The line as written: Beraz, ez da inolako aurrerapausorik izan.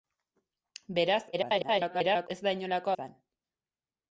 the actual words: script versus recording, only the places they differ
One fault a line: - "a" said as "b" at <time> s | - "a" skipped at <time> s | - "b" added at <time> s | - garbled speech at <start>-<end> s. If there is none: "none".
- garbled speech at 1.3-2.3 s
- "aurrerapausorik" skipped at 2.9 s